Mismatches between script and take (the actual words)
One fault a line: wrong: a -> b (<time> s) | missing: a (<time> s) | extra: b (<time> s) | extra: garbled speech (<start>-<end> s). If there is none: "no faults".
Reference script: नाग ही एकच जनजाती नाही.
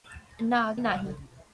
missing: ही एकच जनजाती (0.8 s)